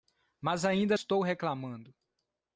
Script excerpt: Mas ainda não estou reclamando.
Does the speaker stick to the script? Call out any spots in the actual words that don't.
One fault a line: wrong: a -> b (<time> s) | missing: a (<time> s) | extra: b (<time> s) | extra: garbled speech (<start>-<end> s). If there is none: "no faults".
missing: não (1.0 s)